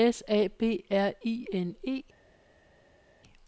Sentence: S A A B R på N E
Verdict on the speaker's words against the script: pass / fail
fail